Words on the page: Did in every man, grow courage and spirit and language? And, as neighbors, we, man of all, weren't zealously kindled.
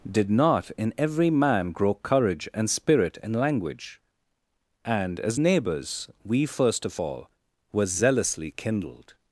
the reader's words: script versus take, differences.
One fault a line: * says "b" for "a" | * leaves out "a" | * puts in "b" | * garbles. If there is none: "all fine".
* puts in "not"
* says "first" for "man"
* says "were" for "weren't"